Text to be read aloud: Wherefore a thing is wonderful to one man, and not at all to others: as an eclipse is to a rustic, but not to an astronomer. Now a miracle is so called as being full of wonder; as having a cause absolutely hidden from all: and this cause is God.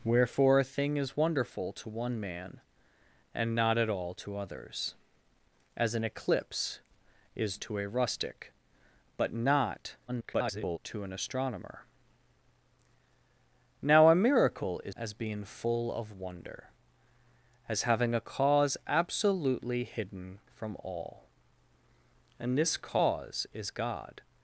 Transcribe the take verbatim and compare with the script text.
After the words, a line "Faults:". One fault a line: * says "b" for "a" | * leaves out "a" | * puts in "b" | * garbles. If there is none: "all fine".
Wherefore a thing is wonderful to one man, and not at all to others: as an eclipse is to a rustic, but not [garbled] to an astronomer. Now a miracle is as being full of wonder; as having a cause absolutely hidden from all: and this cause is God.
Faults:
* garbles
* leaves out "so called"